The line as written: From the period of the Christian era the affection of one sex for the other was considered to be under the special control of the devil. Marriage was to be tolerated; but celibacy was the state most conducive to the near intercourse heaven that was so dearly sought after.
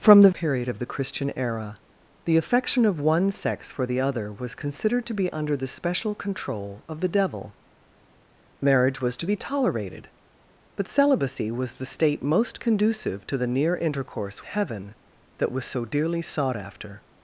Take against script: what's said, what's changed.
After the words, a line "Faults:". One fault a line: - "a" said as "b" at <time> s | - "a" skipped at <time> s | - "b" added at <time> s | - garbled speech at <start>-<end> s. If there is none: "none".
From the period of the Christian era the affection of one sex for the other was considered to be under the special control of the devil. Marriage was to be tolerated; but celibacy was the state most conducive to the near intercourse heaven that was so dearly sought after.
Faults:
none